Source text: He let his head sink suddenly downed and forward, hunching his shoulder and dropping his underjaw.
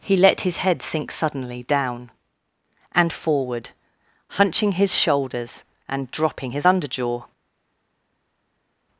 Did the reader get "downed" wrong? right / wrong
wrong